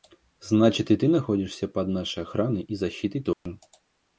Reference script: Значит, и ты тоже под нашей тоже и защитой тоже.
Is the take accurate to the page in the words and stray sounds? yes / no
no